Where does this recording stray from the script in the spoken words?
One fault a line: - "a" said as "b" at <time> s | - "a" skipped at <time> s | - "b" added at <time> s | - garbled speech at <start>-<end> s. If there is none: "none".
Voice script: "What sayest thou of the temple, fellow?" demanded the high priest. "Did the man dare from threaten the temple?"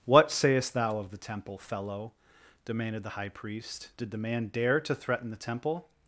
- "from" said as "to" at 4.8 s